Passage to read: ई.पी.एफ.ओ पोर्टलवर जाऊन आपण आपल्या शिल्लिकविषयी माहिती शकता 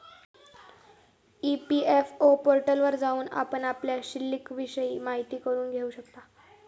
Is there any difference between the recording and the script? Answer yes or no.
yes